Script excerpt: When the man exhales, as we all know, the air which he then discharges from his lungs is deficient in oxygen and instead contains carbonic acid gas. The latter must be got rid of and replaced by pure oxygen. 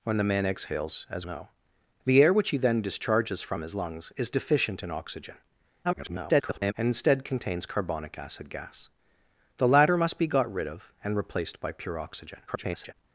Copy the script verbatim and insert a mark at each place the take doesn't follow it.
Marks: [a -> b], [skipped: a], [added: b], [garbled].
When the man exhales, as [skipped: we all] know, the air which he then discharges from his lungs is deficient in oxygen [garbled] and instead contains carbonic acid gas. The latter must be got rid of and replaced by pure oxygen. [garbled]